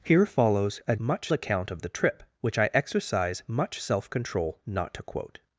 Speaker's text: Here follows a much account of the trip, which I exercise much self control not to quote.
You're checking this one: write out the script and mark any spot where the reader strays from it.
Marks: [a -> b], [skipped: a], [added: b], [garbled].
Here follows a much account of the trip, which I exercise much self control not to quote.